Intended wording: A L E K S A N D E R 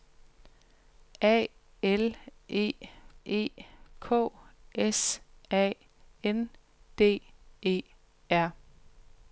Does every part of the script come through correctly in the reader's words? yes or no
no